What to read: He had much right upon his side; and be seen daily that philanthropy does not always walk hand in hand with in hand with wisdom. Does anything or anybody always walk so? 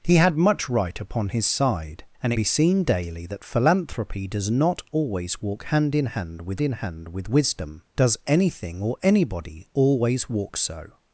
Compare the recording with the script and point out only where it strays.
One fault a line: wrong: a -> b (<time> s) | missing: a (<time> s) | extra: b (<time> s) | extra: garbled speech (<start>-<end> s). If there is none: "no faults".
no faults